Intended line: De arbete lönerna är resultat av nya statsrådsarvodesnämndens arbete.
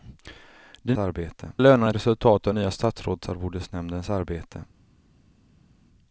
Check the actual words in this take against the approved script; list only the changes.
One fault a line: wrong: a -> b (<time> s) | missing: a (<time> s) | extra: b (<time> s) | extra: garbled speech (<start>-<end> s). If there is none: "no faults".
no faults